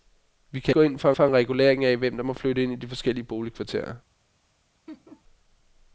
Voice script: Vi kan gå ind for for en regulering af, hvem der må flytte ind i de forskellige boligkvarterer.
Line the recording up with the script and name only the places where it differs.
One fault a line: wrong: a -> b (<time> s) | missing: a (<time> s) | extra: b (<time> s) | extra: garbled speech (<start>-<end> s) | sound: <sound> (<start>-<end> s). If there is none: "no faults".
sound: laugh (4.9-5.2 s)